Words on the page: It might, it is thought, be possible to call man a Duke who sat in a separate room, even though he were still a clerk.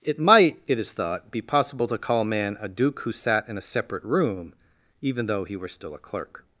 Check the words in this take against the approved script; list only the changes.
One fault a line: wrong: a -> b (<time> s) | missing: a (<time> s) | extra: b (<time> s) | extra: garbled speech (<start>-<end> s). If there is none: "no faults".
no faults